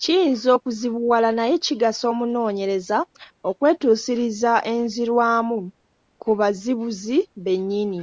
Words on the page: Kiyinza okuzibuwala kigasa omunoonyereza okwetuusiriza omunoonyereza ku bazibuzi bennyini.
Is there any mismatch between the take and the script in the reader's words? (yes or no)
yes